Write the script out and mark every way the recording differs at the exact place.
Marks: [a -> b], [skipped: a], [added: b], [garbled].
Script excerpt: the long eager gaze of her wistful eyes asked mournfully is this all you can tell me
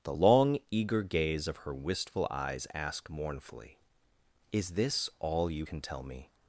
the long eager gaze of her wistful eyes asked mournfully is this all you can tell me